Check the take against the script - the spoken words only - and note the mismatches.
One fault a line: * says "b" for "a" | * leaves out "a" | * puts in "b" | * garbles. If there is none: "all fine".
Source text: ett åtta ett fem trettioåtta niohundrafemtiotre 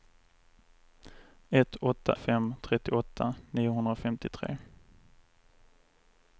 * leaves out "ett"